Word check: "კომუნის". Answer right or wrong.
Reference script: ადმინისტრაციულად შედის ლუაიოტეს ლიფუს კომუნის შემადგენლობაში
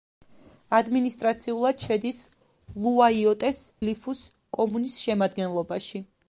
right